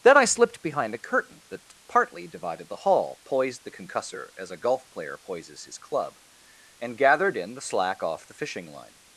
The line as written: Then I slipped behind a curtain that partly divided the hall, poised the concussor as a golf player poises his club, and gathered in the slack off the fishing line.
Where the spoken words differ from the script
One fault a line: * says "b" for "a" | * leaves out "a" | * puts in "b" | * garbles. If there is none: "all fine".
all fine